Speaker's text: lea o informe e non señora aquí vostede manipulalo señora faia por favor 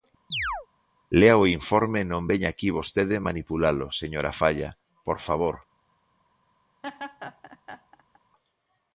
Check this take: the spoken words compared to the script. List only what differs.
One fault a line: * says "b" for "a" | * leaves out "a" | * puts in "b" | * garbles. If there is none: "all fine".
* says "veña" for "señora"